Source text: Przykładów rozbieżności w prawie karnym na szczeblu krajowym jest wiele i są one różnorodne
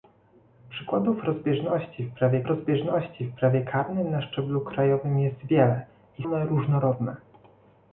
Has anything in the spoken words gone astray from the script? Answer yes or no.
yes